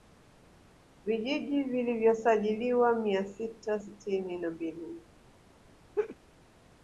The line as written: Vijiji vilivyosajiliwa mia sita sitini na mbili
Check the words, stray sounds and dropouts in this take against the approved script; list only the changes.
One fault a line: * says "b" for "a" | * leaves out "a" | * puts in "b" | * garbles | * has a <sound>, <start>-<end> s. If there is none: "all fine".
* has a laugh, 5.9-6.2 s